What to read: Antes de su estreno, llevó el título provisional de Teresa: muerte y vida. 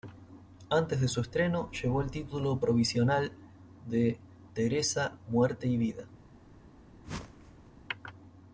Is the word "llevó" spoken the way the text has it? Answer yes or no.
yes